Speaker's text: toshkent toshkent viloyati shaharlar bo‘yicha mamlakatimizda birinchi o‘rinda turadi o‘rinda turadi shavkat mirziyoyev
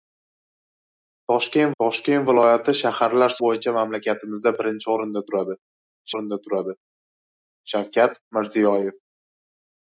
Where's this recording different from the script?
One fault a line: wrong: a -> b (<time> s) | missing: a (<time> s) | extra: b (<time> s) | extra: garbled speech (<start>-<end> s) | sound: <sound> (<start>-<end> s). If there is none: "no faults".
no faults